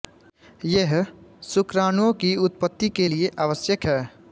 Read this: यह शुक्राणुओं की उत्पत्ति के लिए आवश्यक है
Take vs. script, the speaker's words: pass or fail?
pass